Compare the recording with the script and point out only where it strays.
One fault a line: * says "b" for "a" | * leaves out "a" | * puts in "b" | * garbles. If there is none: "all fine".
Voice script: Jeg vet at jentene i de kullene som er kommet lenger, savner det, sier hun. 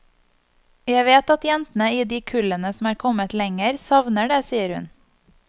all fine